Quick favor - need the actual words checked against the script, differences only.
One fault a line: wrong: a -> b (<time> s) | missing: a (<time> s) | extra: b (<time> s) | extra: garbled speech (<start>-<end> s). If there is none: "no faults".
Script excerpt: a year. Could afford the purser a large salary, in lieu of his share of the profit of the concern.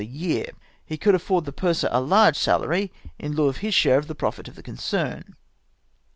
extra: He (0.8 s)